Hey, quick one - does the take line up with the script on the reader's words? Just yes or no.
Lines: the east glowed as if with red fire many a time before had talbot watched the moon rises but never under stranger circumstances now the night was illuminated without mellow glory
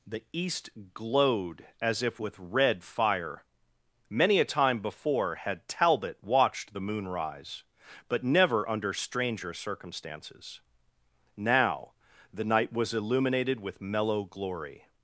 no